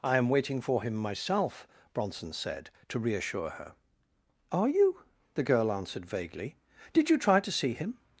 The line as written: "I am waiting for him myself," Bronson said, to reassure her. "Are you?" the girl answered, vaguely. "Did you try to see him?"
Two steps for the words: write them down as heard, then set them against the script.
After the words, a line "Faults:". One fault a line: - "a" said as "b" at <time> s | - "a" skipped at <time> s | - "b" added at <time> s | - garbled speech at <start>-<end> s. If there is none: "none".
"I am waiting for him myself," Bronson said, to reassure her. "Are you?" the girl answered, vaguely. "Did you try to see him?"
Faults:
none